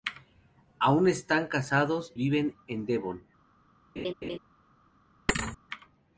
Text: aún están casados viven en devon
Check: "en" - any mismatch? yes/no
no